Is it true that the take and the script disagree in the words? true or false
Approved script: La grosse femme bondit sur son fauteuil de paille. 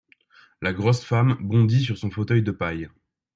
false